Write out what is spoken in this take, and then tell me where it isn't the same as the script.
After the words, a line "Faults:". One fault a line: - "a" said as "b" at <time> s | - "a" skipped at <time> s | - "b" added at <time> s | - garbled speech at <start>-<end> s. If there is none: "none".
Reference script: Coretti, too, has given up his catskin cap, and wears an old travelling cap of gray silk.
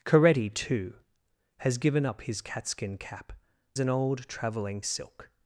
Coretti, too, has given up his catskin cap, an old travelling silk.
Faults:
- "and wears" skipped at 3.3 s
- "cap of gray" skipped at 4.8 s